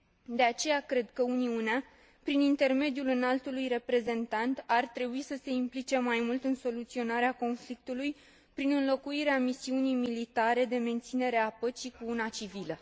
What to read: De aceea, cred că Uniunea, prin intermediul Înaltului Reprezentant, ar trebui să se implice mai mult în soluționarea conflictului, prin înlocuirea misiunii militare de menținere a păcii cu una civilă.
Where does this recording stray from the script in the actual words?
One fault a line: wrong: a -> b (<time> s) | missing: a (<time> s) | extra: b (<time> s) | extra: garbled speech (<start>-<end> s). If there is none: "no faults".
no faults